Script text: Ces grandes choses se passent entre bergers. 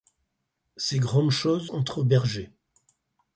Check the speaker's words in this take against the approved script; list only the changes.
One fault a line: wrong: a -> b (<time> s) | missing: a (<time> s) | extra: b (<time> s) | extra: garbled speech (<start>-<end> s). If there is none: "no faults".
missing: se passent (1.7 s)